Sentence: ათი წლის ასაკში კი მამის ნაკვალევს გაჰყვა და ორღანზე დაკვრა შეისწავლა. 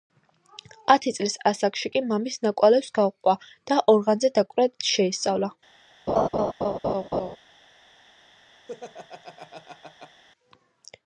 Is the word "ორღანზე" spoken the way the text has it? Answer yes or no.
yes